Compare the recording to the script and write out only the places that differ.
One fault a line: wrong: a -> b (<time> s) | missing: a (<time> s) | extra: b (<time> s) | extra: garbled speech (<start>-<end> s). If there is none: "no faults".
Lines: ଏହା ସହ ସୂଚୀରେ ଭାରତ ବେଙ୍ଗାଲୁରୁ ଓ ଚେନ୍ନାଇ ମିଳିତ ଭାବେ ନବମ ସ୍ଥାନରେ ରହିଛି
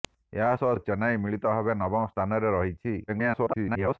missing: ସୂଚୀରେ ଭାରତ ବେଙ୍ଗାଲୁରୁ (0.7 s)
extra: garbled speech (3.1-4.0 s)